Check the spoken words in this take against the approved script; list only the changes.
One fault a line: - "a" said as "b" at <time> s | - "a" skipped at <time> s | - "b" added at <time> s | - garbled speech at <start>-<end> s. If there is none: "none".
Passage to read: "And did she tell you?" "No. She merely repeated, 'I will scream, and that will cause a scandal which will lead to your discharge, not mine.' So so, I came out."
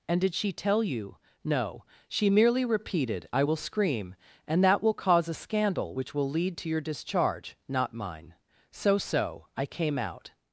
none